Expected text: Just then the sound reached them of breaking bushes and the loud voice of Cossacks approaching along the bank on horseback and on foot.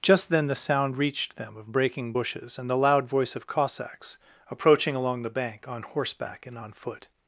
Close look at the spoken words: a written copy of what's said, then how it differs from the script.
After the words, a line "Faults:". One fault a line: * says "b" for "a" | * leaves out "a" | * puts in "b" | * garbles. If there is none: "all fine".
Just then the sound reached them of breaking bushes and the loud voice of Cossacks approaching along the bank on horseback and on foot.
Faults:
all fine